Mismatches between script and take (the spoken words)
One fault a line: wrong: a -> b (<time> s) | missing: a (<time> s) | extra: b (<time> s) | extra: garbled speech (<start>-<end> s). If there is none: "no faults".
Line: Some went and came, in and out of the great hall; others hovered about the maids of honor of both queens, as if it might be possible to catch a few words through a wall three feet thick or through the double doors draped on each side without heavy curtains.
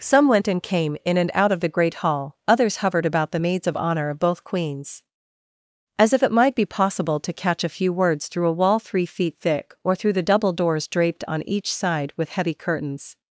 wrong: without -> with (12.1 s)